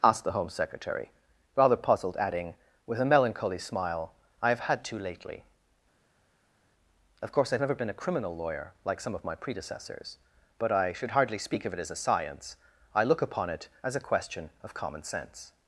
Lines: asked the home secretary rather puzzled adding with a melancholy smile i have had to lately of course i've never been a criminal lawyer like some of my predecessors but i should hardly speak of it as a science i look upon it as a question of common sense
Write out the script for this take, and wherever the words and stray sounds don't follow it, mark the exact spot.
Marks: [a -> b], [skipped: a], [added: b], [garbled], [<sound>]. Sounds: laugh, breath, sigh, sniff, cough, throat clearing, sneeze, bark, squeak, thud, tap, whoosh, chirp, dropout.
asked the home secretary rather puzzled adding with a melancholy smile i have had to lately of course i've never been a criminal lawyer like some of my predecessors but i should hardly speak of it as a science i look upon it as a question of common sense